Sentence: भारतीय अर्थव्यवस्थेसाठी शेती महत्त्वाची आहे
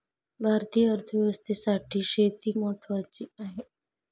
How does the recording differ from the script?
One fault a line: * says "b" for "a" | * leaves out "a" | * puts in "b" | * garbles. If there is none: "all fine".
all fine